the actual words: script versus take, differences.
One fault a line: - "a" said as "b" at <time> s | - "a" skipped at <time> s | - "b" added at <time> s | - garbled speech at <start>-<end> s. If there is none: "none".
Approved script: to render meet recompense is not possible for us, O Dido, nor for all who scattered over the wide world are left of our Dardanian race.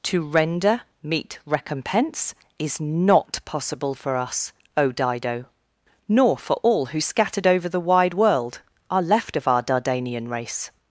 none